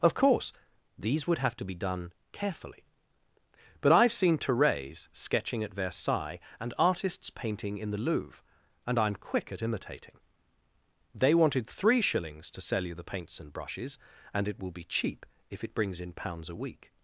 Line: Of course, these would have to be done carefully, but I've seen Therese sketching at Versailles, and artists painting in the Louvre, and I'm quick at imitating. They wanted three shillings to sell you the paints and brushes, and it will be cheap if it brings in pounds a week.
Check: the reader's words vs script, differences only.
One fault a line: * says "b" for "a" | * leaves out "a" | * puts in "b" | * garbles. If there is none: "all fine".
all fine